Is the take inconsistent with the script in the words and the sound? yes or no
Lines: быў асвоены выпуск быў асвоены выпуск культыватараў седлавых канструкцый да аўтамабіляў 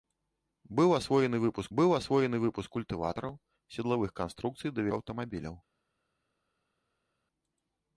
no